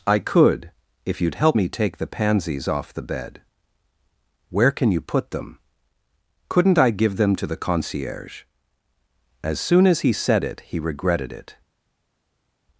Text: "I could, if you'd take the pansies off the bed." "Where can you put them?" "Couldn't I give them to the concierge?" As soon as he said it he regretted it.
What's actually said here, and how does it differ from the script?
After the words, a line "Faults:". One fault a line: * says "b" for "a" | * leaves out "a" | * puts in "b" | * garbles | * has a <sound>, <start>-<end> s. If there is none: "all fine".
"I could, if you'd help me take the pansies off the bed." "Where can you put them?" "Couldn't I give them to the concierge?" As soon as he said it he regretted it.
Faults:
* puts in "help me"